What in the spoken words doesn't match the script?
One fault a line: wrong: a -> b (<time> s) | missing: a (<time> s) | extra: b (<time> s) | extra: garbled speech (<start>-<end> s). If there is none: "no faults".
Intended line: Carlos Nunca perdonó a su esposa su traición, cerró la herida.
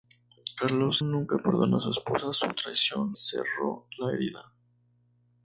no faults